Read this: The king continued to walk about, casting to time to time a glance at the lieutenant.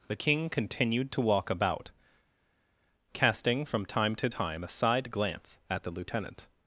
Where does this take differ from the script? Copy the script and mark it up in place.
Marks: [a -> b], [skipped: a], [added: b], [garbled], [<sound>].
The king continued to walk about, casting [to -> from] time to time a [added: side] glance at the lieutenant.